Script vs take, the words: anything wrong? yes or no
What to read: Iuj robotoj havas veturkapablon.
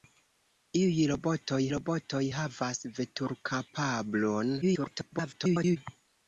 yes